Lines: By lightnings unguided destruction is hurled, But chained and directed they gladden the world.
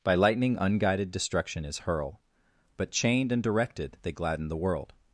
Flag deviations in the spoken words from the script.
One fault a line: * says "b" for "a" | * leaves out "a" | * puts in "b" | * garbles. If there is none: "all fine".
* says "lightning" for "lightnings"
* says "hurl" for "hurled"